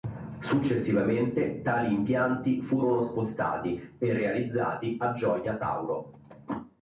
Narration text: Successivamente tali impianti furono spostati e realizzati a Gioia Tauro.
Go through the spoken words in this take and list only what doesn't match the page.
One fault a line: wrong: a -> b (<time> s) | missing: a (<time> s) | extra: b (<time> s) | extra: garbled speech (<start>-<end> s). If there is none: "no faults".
no faults